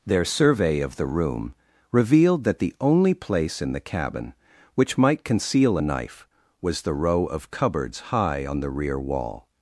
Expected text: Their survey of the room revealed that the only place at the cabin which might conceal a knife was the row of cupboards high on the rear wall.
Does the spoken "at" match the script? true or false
false